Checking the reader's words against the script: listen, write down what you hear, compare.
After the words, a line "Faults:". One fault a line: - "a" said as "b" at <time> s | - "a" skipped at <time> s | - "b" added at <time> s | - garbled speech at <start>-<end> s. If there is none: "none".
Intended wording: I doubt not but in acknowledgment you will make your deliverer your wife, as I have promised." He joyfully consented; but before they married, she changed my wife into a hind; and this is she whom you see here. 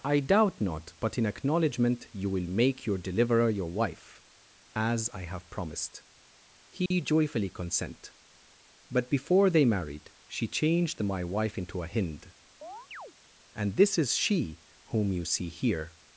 I doubt not but in acknowledgment you will make your deliverer your wife, as I have promised." He joyfully consent; but before they married, she changed my wife into a hind; and this is she whom you see here.
Faults:
- "consented" said as "consent" at 7.5 s